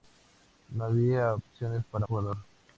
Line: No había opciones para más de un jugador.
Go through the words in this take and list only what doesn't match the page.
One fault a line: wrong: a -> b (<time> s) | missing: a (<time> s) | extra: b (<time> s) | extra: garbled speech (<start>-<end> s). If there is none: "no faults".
missing: más de un (2.1 s)